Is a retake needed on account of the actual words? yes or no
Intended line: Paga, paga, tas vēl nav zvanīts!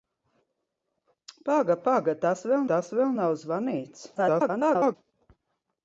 yes